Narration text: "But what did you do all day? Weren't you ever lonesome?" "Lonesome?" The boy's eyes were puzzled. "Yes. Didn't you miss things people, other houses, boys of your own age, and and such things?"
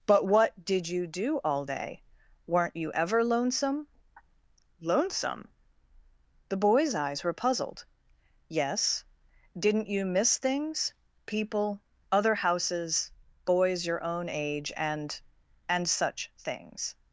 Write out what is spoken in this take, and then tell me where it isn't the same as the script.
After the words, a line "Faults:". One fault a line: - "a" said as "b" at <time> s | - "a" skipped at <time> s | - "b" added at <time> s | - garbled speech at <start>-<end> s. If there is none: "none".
"But what did you do all day? Weren't you ever lonesome?" "Lonesome?" The boy's eyes were puzzled. "Yes. Didn't you miss things people, other houses, boys your own age, and and such things?"
Faults:
- "of" skipped at 13.9 s